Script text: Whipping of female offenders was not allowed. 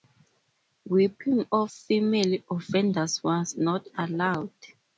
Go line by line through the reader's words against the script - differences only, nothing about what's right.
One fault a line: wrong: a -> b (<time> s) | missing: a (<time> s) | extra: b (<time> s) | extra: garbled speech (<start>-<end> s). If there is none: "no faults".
no faults